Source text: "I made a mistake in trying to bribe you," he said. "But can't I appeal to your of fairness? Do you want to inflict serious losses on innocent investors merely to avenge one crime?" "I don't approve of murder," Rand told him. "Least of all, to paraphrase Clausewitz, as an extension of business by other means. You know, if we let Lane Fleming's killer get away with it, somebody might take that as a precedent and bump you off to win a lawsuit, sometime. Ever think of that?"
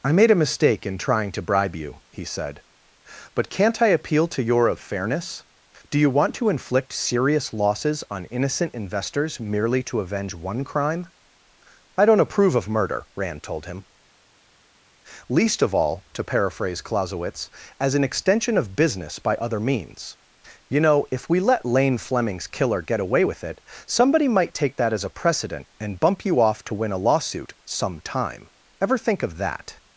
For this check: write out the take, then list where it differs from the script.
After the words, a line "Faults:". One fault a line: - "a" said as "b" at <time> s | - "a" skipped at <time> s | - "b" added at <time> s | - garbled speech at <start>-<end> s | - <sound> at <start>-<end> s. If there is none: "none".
"I made a mistake in trying to bribe you," he said. "But can't I appeal to your of fairness? Do you want to inflict serious losses on innocent investors merely to avenge one crime?" "I don't approve of murder," Rand told him. "Least of all, to paraphrase Clausewitz, as an extension of business by other means. You know, if we let Lane Fleming's killer get away with it, somebody might take that as a precedent and bump you off to win a lawsuit, sometime. Ever think of that?"
Faults:
none